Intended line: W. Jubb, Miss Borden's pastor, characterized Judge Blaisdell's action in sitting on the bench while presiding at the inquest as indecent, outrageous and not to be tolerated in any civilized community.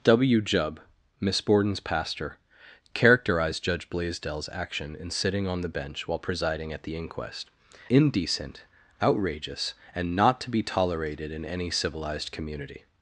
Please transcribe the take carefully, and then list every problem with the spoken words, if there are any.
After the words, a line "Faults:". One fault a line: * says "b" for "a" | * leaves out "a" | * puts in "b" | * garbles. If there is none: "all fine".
W. Jubb, Miss Borden's pastor, characterized Judge Blaisdell's action in sitting on the bench while presiding at the inquest indecent, outrageous and not to be tolerated in any civilized community.
Faults:
* leaves out "as"